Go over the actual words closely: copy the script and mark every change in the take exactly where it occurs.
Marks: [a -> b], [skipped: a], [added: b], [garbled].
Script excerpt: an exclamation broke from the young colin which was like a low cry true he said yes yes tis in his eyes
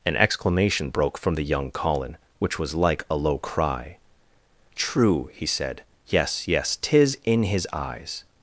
an exclamation broke from the young colin which was like a low cry true he said yes yes tis in his eyes